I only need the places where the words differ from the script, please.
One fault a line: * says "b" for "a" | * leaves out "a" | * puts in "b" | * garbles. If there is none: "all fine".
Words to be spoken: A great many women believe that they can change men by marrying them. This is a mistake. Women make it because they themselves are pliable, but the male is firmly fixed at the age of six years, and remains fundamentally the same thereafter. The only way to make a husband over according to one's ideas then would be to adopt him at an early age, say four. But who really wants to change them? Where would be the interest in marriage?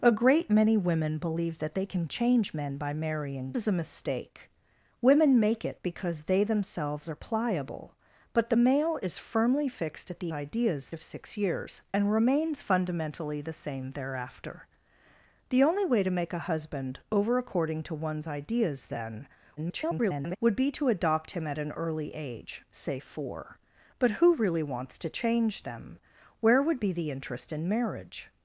* leaves out "them This"
* says "ideas" for "age"
* garbles